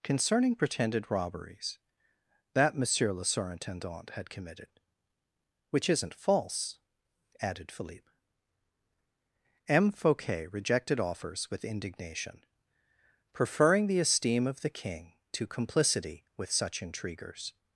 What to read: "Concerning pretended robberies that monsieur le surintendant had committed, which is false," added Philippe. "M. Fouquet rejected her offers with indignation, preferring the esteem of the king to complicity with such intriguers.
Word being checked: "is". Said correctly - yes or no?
no